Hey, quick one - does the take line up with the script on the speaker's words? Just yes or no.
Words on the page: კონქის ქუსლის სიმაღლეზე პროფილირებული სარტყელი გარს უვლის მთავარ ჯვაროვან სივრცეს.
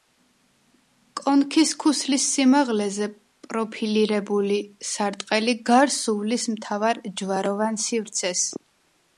yes